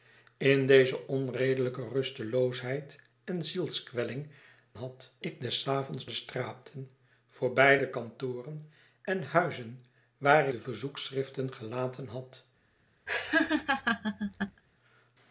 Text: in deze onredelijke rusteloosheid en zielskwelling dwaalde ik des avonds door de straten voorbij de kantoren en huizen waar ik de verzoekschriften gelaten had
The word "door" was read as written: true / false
false